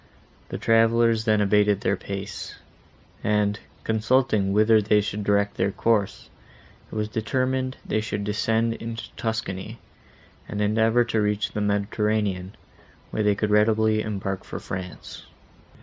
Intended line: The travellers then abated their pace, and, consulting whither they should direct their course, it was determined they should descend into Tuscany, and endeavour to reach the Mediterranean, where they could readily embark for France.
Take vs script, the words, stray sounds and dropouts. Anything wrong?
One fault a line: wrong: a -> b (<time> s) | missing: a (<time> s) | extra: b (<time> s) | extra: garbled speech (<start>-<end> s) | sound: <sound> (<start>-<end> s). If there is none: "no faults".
no faults